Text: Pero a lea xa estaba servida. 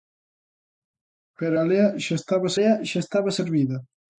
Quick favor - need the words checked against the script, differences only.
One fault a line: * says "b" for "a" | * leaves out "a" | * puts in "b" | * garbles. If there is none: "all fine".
* puts in "lea xa estaba"